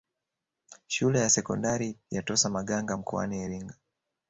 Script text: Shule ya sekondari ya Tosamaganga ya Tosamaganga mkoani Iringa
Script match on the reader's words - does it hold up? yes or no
no